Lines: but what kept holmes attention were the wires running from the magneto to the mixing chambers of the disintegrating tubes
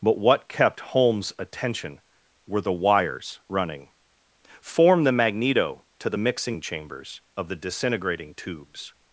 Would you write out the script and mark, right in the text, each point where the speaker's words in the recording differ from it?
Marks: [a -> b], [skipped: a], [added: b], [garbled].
but what kept holmes attention were the wires running [from -> form] the magneto to the mixing chambers of the disintegrating tubes